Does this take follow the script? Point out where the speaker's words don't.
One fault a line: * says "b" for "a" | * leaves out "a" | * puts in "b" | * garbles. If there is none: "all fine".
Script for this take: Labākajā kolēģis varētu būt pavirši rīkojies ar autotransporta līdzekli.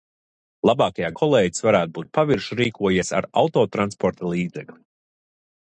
all fine